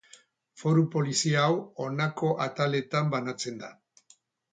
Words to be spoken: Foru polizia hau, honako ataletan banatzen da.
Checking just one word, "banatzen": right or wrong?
right